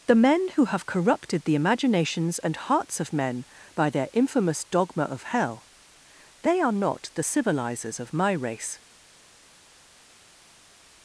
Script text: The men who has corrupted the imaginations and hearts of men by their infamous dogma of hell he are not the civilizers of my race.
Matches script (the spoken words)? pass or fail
fail